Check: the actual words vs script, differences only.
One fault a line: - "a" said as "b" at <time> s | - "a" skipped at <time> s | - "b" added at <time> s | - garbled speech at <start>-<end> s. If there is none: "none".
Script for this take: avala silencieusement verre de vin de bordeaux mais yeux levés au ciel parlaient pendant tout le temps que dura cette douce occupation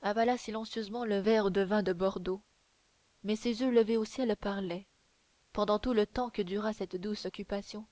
- "le" added at 1.1 s
- "ses" added at 3.4 s